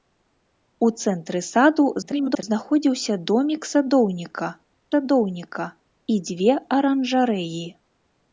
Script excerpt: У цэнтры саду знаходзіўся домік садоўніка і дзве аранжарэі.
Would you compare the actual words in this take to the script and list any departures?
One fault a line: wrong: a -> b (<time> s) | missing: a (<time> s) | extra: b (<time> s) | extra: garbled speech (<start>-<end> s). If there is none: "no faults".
extra: garbled speech (2.0-2.4 s)
extra: садоўніка (4.9 s)